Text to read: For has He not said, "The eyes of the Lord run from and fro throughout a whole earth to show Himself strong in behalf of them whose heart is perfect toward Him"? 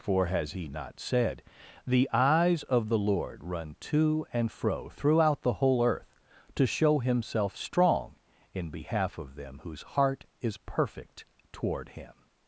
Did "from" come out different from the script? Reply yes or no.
yes